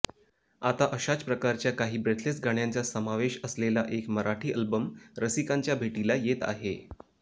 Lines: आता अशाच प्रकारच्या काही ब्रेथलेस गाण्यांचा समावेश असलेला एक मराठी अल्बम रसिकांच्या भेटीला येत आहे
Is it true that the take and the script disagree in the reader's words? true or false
false